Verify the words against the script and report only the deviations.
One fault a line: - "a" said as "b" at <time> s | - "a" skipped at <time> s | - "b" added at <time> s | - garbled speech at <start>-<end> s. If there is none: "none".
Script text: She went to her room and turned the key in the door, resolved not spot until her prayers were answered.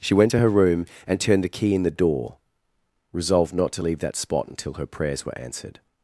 - "to leave that" added at 3.7 s